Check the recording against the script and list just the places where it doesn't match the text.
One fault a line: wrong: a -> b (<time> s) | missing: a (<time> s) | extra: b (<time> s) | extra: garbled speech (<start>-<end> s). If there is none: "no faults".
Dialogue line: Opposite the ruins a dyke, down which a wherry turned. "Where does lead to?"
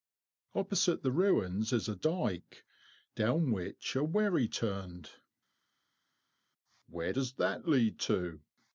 extra: is (1.7 s)
extra: that (7.4 s)